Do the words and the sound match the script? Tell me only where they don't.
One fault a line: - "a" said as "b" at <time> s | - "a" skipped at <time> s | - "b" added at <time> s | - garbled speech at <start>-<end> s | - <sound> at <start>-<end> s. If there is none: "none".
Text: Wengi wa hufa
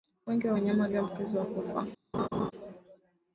- "wanyama walioambukizwa" added at 0.5 s
- laugh at 2.1-2.5 s